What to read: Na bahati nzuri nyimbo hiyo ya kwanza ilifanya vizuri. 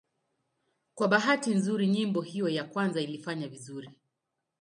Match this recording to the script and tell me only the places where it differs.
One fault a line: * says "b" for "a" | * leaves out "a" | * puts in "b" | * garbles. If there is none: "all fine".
* says "Kwa" for "Na"